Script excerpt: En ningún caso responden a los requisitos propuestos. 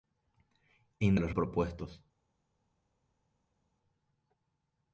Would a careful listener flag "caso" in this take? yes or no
yes